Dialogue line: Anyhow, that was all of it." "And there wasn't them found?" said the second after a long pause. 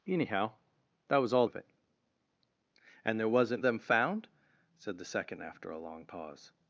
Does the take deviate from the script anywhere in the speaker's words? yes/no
no